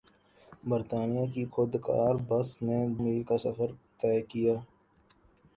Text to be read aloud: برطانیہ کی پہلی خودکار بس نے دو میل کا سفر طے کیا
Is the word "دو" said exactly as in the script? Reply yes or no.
no